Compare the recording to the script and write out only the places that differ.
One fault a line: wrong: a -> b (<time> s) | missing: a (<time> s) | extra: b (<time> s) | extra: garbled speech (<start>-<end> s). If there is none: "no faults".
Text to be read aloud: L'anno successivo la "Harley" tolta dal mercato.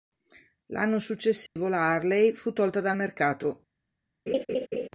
extra: fu (2.3 s)